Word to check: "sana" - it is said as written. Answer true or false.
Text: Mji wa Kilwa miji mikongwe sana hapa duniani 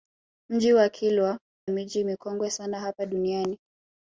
true